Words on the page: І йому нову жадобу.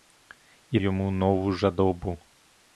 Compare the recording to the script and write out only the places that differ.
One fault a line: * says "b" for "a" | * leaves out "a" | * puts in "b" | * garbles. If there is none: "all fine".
all fine